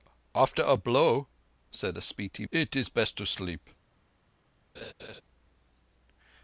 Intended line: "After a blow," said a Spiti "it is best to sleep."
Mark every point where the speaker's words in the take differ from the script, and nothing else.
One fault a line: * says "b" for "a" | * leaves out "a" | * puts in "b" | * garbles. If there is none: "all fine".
all fine